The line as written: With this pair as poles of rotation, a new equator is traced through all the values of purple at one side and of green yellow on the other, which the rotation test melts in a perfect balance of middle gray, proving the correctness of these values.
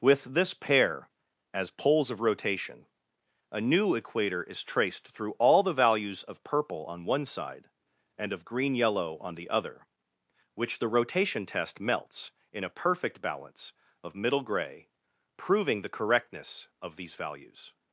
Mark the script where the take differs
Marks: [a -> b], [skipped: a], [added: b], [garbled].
With this pair as poles of rotation, a new equator is traced through all the values of purple [at -> on] one side and of green yellow on the other, which the rotation test melts in a perfect balance of middle gray, proving the correctness of these values.